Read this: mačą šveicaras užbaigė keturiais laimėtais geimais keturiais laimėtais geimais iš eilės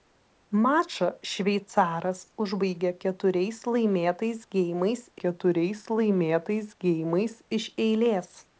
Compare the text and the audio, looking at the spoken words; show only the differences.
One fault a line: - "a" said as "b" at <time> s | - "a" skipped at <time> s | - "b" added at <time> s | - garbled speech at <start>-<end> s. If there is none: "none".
none